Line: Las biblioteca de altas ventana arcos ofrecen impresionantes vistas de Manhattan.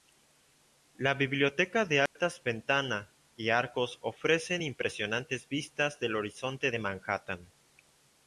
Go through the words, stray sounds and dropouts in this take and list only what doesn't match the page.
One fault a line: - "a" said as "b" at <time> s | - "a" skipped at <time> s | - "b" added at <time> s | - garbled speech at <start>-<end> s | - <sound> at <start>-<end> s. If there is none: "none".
- "Las" said as "La" at 1.0 s
- dropout at 2.1-2.2 s
- "y" added at 3.4 s
- "del horizonte" added at 6.0 s